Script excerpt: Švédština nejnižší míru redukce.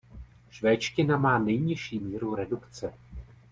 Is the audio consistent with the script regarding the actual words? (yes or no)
no